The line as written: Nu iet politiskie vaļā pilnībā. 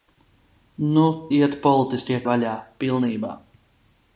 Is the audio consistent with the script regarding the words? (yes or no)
yes